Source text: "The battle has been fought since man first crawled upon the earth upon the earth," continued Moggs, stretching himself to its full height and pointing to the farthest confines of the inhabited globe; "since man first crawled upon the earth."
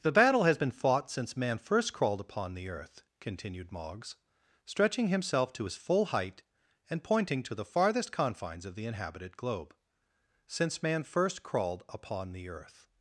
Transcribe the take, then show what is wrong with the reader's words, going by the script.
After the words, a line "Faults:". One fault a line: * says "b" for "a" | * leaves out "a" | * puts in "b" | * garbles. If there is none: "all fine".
"The battle has been fought since man first crawled upon the earth," continued Moggs, stretching himself to his full height and pointing to the farthest confines of the inhabited globe; "since man first crawled upon the earth."
Faults:
* leaves out "upon the earth"
* says "his" for "its"